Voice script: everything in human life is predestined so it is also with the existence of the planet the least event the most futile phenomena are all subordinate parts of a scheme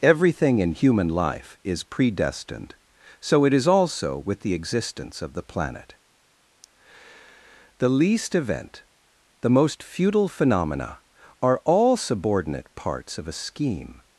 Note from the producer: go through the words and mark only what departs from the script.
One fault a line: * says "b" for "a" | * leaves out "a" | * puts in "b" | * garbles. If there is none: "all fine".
all fine